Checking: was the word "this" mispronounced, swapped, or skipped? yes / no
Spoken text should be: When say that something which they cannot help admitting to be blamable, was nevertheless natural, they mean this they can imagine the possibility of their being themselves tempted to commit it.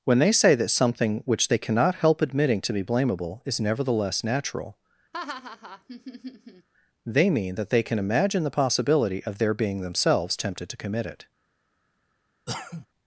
yes